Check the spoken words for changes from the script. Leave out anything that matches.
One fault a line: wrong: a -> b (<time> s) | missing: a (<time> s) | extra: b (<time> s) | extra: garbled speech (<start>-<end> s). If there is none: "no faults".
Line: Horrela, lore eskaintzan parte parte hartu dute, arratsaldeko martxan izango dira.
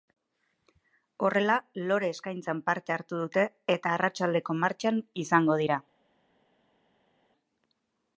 missing: parte (3.0 s)
extra: eta (3.8 s)